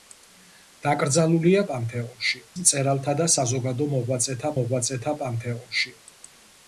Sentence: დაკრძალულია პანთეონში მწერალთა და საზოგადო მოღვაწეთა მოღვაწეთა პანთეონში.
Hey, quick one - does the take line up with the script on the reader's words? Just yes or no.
yes